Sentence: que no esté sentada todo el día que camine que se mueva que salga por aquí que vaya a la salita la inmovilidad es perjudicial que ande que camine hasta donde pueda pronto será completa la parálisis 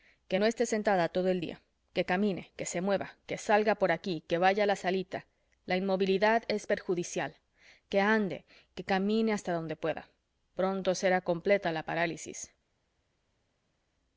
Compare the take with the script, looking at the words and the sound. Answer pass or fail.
pass